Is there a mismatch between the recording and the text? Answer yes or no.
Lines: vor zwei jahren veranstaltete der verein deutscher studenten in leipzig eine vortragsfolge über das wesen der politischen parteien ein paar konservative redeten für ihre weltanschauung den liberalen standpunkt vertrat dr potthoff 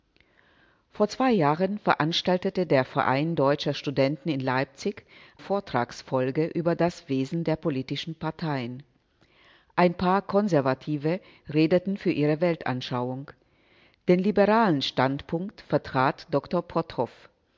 yes